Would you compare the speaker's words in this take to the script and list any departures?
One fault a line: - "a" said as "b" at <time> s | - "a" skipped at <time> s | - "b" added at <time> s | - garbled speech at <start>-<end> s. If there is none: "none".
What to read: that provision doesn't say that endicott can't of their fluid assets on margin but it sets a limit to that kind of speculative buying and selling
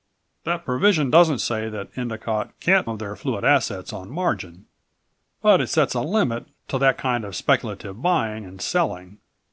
none